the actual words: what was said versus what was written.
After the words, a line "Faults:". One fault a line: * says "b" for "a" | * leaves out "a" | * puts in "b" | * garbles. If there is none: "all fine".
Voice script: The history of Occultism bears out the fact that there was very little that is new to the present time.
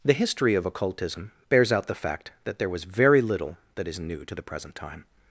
The history of Occultism bears out the fact that there was very little that is new to the present time.
Faults:
all fine